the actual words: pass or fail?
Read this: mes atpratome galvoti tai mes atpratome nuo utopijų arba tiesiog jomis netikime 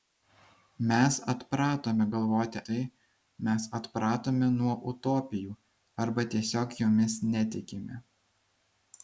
pass